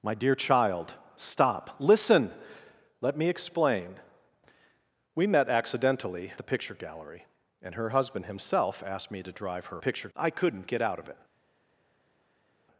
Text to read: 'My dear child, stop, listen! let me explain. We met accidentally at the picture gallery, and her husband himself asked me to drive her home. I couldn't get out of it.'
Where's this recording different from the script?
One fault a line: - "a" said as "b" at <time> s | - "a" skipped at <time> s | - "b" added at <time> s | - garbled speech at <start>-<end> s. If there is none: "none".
- "at" skipped at 6.3 s
- "home" said as "picture" at 9.8 s